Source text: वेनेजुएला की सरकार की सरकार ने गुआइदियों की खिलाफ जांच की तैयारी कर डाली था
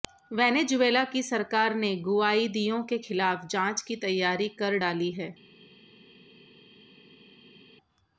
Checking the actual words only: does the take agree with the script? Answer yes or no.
no